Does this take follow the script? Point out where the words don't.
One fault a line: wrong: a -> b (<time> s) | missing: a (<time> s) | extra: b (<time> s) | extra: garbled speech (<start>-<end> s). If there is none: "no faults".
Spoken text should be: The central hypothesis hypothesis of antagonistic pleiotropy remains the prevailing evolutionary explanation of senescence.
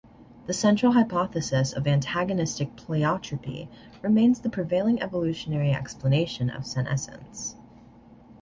missing: hypothesis (1.7 s)